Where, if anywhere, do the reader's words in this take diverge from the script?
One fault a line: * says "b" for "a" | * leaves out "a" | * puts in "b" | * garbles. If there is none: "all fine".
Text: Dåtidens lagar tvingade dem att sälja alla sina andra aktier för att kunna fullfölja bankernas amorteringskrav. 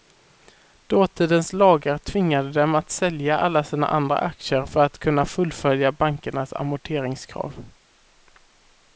all fine